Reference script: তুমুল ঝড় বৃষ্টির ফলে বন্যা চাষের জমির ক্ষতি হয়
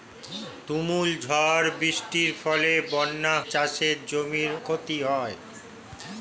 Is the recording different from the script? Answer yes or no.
no